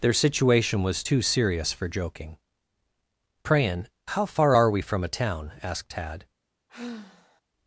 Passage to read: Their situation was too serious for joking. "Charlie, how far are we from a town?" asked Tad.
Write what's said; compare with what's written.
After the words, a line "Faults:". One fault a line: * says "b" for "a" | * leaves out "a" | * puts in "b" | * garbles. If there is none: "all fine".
Their situation was too serious for joking. "Prayin, how far are we from a town?" asked Tad.
Faults:
* says "Prayin" for "Charlie"